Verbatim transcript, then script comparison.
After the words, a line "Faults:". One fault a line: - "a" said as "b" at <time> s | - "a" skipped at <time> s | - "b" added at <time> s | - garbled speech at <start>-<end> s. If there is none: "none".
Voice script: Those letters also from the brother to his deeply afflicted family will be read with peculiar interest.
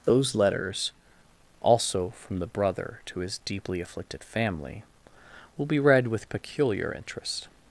Those letters also from the brother to his deeply afflicted family will be read with peculiar interest.
Faults:
none